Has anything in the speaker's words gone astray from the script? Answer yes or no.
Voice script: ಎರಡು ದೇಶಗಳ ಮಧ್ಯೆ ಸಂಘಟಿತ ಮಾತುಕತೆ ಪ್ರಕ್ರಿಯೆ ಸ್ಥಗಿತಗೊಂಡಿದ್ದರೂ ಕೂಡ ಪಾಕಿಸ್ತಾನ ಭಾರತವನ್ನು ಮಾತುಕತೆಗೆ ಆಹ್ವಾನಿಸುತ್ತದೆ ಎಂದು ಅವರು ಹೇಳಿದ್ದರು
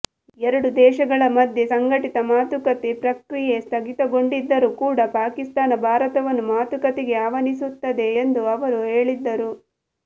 no